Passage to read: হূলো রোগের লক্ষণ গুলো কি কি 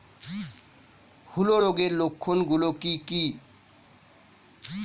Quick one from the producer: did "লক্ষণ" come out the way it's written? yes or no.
yes